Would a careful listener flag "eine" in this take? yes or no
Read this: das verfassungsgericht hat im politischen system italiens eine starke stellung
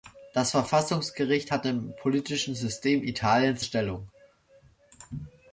yes